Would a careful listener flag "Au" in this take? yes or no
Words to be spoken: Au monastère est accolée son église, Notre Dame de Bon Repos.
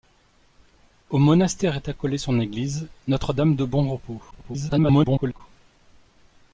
no